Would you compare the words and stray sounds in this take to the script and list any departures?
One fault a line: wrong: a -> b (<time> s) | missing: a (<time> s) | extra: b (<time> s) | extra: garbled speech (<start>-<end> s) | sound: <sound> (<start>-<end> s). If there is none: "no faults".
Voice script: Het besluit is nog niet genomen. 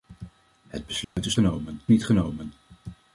sound: dropout (1.0-1.2 s)
wrong: nog -> genomen (1.3 s)